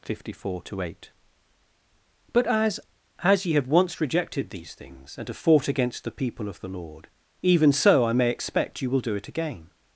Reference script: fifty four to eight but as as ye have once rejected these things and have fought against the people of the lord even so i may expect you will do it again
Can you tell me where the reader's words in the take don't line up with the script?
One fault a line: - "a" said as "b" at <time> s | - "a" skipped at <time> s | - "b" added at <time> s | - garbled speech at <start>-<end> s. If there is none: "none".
none